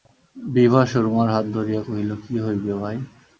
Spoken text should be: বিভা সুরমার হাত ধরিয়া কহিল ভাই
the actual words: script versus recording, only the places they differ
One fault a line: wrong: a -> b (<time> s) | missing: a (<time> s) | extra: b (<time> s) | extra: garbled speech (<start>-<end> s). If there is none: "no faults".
extra: কী হইবে (2.2 s)